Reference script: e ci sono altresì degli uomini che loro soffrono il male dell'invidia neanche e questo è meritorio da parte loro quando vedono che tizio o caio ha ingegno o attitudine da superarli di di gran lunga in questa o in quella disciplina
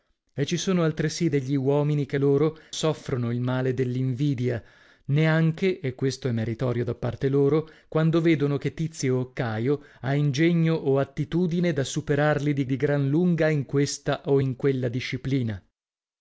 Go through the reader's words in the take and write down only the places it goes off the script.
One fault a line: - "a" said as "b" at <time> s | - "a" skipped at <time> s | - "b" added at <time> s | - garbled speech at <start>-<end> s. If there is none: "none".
none